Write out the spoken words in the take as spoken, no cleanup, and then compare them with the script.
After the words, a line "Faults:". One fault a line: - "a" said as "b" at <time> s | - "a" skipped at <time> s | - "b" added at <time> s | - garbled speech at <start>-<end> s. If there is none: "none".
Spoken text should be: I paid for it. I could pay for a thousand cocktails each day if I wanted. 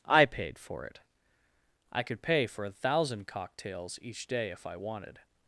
I paid for it. I could pay for a thousand cocktails each day if I wanted.
Faults:
none